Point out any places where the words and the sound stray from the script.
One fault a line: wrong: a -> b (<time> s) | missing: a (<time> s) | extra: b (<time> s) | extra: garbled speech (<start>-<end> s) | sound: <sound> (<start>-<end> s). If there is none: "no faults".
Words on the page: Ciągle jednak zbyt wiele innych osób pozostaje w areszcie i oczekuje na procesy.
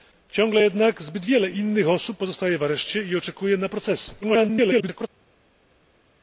extra: garbled speech (4.2-5.1 s)